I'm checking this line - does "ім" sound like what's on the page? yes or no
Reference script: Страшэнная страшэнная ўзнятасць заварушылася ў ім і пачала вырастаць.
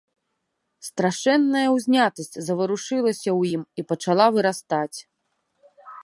yes